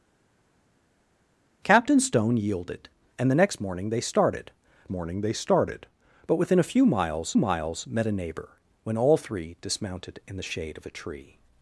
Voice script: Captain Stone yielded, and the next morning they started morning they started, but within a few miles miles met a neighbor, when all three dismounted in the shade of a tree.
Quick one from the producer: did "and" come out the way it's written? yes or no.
yes